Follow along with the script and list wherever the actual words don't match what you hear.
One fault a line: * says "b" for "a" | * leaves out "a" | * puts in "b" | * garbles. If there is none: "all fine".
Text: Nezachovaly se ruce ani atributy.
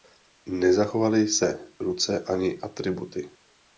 all fine